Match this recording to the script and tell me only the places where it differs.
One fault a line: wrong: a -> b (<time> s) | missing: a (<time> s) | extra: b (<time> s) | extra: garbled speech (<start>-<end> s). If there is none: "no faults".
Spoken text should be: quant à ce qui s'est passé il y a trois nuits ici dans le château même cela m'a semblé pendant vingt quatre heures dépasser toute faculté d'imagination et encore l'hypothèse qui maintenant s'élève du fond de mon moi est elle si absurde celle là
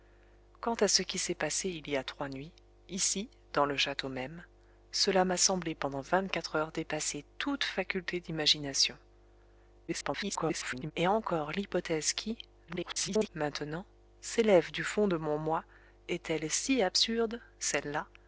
extra: garbled speech (9.9-10.9 s)
extra: garbled speech (12.7-13.3 s)